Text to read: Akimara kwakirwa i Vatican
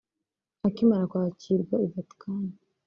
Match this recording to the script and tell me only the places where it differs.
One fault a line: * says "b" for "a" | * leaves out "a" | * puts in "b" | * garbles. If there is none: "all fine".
all fine